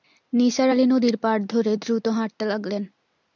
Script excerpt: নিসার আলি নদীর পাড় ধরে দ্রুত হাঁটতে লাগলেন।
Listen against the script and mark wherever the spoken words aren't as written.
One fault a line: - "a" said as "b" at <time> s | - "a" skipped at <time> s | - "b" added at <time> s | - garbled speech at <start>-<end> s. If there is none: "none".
none